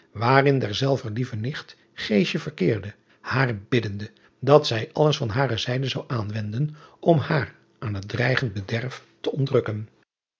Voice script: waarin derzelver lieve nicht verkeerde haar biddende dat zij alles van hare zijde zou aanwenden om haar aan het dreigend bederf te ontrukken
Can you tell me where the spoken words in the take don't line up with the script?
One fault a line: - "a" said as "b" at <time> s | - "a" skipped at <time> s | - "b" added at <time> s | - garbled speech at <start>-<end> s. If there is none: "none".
none